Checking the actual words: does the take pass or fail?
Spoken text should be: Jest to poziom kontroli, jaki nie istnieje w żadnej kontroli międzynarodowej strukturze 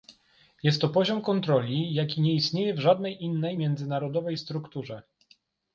fail